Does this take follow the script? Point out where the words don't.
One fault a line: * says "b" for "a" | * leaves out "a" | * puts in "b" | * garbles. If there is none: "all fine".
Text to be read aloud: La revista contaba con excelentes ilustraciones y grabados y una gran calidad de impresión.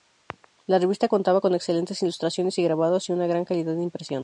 all fine